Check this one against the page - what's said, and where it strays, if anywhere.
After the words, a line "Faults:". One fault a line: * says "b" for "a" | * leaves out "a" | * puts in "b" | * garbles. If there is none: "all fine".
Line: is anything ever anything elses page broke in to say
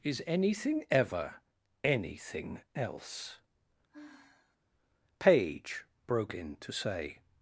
is anything ever anything else page broke in to say
Faults:
* says "else" for "elses"